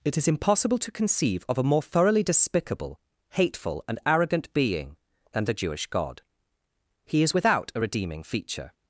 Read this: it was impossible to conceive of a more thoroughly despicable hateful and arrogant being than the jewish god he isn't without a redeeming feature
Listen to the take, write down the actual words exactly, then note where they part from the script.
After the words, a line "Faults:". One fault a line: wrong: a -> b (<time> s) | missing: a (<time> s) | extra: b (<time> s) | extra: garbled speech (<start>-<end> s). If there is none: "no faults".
it is impossible to conceive of a more thoroughly despicable hateful and arrogant being than the jewish god he is without a redeeming feature
Faults:
wrong: was -> is (0.2 s)
wrong: isn't -> is (7.2 s)